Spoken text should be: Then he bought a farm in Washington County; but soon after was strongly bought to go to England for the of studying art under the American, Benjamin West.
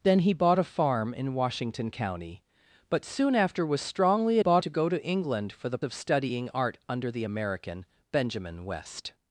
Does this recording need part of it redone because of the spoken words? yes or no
no